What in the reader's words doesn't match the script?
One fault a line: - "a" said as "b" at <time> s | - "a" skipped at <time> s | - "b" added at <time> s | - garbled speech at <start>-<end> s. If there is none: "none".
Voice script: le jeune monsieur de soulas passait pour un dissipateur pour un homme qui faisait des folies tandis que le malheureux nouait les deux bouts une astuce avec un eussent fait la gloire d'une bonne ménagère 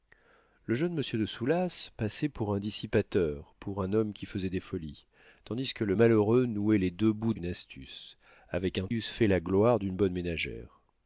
none